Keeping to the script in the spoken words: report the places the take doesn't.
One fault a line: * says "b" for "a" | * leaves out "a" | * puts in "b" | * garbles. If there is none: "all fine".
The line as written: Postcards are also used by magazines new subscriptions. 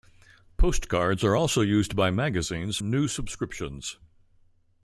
all fine